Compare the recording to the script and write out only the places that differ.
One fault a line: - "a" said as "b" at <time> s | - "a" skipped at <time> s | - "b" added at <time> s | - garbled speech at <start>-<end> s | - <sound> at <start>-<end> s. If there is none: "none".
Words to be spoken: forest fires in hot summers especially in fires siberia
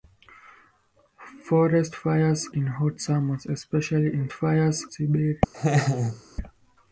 - laugh at 5.5-6.2 s